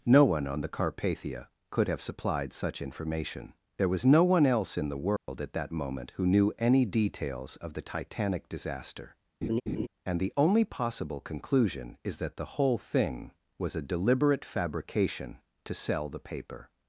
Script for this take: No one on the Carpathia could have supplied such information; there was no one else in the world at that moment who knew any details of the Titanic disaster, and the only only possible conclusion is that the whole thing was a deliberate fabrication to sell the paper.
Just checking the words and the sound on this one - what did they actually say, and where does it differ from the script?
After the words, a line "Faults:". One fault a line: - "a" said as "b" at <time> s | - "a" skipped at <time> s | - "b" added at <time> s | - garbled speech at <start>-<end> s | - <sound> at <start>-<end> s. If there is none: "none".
No one on the Carpathia could have supplied such information; there was no one else in the world at that moment who knew any details of the Titanic disaster, and the only possible conclusion is that the whole thing was a deliberate fabrication to sell the paper.
Faults:
- dropout at 5.2-5.3 s
- laugh at 9.4-9.9 s
- "only" skipped at 10.7 s